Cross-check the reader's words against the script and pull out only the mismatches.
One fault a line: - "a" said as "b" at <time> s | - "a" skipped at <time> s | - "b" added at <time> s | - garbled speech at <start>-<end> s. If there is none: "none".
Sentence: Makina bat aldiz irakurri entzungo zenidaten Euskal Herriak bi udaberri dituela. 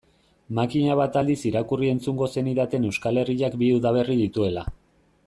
none